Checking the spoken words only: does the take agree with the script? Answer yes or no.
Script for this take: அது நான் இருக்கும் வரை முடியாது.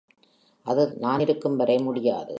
yes